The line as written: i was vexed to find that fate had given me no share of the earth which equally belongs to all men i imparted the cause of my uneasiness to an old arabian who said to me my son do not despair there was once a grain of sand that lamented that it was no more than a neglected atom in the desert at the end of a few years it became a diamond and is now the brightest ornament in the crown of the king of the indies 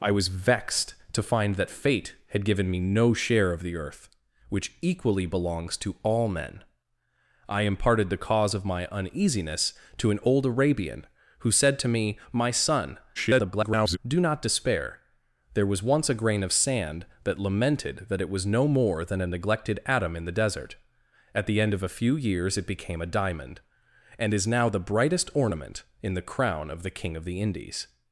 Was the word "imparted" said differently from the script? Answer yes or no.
no